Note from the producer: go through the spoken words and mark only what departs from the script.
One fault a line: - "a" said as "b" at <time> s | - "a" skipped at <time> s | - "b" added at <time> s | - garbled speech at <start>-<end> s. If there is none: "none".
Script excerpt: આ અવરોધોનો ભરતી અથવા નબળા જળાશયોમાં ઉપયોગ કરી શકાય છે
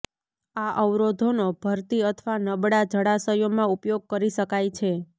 none